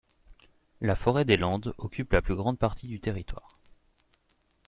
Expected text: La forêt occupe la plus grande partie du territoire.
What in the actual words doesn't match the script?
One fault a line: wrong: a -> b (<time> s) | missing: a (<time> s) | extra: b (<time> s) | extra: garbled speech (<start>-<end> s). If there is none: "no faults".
extra: des Landes (1.2 s)